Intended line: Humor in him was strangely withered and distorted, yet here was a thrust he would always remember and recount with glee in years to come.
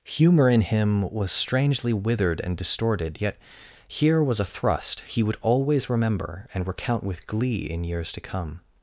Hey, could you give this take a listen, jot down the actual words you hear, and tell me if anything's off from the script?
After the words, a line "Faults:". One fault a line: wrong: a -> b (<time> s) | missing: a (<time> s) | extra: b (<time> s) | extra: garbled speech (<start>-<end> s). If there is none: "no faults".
Humor in him was strangely withered and distorted, yet here was a thrust he would always remember and recount with glee in years to come.
Faults:
no faults